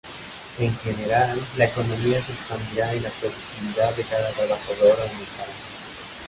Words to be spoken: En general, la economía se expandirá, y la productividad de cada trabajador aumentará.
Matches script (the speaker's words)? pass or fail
pass